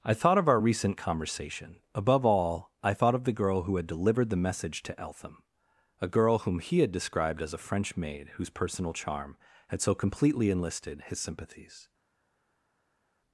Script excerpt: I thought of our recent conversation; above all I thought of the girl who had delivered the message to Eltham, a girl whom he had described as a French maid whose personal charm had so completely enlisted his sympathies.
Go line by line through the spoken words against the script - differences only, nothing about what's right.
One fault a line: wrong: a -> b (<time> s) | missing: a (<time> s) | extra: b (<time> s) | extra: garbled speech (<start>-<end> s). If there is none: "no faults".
no faults